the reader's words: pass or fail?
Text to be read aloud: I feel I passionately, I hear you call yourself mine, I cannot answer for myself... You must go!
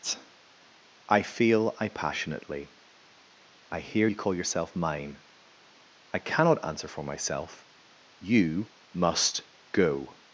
pass